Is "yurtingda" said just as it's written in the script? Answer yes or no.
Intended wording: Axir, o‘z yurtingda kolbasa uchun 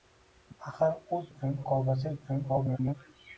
no